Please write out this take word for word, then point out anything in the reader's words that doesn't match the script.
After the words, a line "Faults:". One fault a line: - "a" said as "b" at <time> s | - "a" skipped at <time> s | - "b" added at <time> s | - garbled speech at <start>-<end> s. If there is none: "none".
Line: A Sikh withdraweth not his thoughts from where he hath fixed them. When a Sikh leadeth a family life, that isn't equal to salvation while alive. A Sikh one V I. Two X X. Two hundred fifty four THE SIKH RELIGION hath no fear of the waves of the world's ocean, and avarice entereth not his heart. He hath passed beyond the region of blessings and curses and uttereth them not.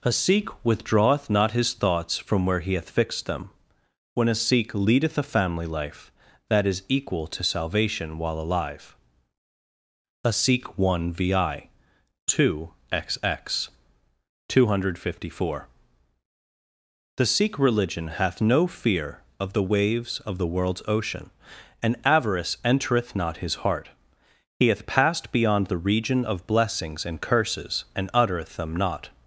A Sikh withdraweth not his thoughts from where he hath fixed them. When a Sikh leadeth a family life, that is equal to salvation while alive. A Sikh one V I. Two X X. Two hundred fifty four THE SIKH RELIGION hath no fear of the waves of the world's ocean, and avarice entereth not his heart. He hath passed beyond the region of blessings and curses and uttereth them not.
Faults:
- "isn't" said as "is" at 6.7 s